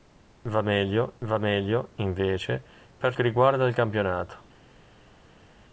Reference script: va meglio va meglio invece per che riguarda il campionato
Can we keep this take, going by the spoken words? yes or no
yes